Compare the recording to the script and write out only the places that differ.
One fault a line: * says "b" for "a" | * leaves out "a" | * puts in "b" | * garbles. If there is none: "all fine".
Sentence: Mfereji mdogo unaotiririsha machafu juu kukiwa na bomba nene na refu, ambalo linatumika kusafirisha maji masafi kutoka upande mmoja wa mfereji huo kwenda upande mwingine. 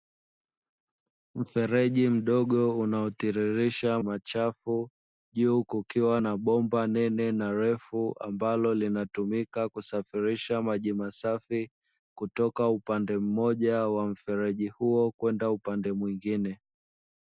all fine